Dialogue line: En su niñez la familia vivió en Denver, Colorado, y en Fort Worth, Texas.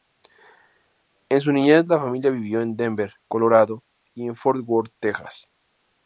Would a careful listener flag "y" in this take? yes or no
no